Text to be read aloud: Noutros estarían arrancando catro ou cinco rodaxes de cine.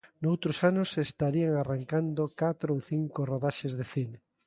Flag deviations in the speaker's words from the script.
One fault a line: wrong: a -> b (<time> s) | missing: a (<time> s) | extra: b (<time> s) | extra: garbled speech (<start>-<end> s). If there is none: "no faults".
extra: anos (0.7 s)